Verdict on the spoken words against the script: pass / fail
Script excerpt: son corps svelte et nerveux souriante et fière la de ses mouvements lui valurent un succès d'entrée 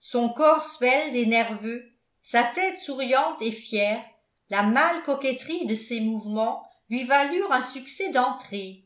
fail